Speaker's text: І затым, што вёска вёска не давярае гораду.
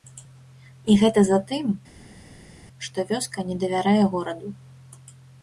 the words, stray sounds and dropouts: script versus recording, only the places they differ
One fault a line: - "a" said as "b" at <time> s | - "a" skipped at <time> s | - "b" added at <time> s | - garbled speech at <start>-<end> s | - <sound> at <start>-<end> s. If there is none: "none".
- "гэта" added at 1.0 s
- "вёска" skipped at 3.4 s